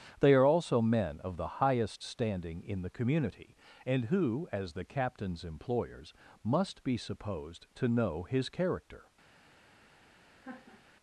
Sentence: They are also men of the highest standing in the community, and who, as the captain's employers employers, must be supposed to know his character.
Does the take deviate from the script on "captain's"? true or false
false